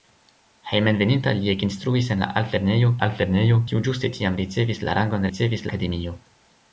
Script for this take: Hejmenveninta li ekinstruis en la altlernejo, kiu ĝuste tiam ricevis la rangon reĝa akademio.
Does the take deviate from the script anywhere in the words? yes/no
yes